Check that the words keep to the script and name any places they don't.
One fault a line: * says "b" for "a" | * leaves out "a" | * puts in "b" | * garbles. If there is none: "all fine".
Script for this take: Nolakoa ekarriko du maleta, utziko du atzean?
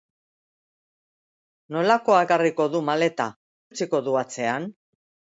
all fine